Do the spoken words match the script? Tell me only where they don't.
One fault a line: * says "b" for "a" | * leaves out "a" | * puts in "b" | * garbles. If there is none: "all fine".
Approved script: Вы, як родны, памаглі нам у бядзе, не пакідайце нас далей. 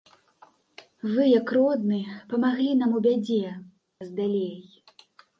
* leaves out "не пакідайце"